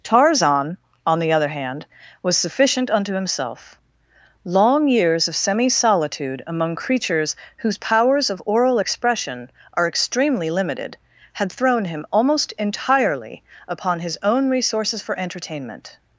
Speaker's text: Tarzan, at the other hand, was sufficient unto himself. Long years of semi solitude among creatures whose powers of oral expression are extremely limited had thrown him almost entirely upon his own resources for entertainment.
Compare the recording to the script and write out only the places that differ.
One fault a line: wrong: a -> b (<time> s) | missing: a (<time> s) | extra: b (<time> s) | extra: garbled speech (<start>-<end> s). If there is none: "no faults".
wrong: at -> on (1.1 s)